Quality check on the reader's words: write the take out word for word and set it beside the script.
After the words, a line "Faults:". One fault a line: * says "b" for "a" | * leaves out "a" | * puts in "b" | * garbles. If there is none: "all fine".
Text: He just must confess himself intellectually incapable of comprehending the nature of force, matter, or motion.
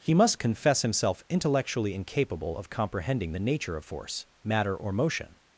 He must confess himself intellectually incapable of comprehending the nature of force, matter, or motion.
Faults:
* leaves out "just"